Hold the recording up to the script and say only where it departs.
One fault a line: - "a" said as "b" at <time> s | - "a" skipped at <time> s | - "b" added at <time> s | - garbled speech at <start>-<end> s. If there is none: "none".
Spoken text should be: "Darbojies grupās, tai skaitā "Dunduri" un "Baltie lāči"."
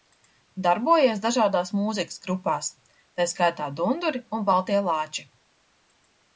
- "dažādās mūzikas" added at 1.2 s